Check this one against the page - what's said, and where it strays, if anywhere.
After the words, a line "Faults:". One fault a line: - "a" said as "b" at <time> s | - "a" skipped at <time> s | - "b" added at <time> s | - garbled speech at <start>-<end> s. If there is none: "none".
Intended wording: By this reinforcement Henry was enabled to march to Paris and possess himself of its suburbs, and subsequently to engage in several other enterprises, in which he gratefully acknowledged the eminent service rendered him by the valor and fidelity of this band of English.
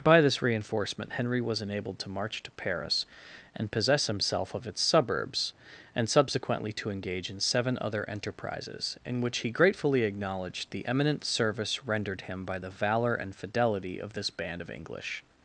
By this reinforcement Henry was enabled to march to Paris and possess himself of its suburbs, and subsequently to engage in seven other enterprises, in which he gratefully acknowledged the eminent service rendered him by the valor and fidelity of this band of English.
Faults:
- "several" said as "seven" at 7.4 s